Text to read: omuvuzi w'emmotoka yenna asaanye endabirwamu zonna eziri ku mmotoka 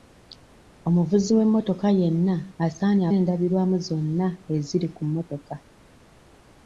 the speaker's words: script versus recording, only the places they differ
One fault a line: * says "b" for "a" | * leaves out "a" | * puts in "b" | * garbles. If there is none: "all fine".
all fine